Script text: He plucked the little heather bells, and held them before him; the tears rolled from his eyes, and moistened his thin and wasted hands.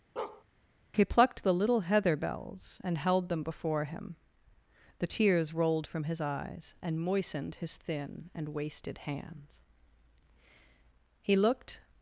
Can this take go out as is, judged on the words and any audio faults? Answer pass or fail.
fail